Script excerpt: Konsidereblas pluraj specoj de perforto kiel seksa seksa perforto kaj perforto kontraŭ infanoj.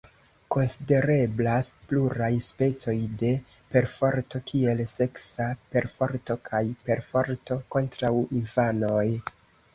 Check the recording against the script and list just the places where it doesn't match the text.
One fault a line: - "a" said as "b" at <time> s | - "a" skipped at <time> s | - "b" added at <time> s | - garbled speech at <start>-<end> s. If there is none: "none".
- "seksa" skipped at 5.5 s